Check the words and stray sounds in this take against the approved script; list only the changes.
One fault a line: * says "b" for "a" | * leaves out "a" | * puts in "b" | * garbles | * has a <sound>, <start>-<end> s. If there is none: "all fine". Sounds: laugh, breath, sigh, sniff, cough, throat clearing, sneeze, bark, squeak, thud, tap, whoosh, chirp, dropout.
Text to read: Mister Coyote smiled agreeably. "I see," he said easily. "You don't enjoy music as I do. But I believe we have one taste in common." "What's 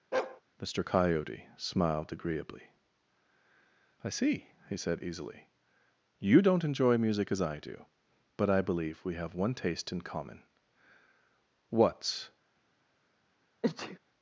* has a bark, 0.1-0.4 s
* has a sneeze, 13.6-14.0 s